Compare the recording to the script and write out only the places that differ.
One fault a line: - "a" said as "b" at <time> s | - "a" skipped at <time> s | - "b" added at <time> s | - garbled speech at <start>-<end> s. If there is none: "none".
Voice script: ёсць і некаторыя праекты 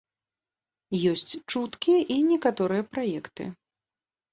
- "чуткі" added at 1.5 s